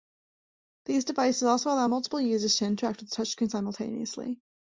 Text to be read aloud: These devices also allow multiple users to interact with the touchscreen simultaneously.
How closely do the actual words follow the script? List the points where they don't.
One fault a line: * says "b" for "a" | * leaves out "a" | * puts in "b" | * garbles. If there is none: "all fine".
all fine